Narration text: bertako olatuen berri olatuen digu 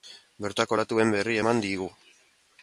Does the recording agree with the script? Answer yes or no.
no